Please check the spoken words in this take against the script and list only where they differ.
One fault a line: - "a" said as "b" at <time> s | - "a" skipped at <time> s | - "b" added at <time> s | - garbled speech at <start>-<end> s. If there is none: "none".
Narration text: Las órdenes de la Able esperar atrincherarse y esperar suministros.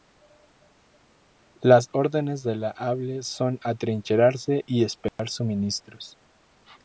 - "esperar" said as "son" at 3.2 s